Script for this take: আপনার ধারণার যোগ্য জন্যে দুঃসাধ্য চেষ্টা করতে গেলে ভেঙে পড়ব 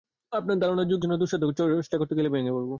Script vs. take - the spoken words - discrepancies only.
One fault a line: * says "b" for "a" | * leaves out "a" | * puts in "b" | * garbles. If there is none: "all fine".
all fine